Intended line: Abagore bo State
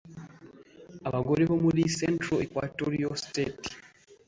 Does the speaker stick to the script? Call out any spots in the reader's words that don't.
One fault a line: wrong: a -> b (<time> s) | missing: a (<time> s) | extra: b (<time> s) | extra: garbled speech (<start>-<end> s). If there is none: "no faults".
extra: muri Central Equatoria (1.6 s)